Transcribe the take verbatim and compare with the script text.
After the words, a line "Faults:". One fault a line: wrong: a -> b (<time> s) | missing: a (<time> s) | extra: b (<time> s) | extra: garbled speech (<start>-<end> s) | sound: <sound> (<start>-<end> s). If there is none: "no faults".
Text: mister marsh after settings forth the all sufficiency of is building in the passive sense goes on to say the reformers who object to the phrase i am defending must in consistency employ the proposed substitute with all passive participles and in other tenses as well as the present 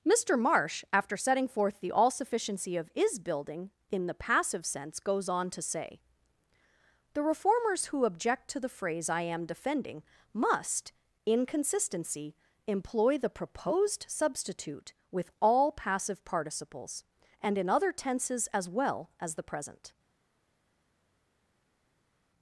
mister marsh after setting forth the all sufficiency of is building in the passive sense goes on to say the reformers who object to the phrase i am defending must in consistency employ the proposed substitute with all passive participles and in other tenses as well as the present
Faults:
wrong: settings -> setting (1.1 s)